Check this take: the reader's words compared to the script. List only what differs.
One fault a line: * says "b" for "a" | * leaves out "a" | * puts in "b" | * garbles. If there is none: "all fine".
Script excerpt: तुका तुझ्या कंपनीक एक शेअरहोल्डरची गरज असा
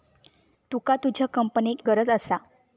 * leaves out "एक शेअरहोल्डरची"